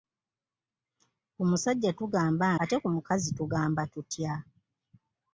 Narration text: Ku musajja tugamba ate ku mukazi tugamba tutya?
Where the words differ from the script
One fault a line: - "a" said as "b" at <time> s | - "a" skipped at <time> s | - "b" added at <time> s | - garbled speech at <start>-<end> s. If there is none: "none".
none